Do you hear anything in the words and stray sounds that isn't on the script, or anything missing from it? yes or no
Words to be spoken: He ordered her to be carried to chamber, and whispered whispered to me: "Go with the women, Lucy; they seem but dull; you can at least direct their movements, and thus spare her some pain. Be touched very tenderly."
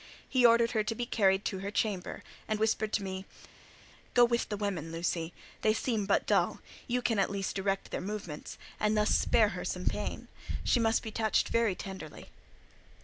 yes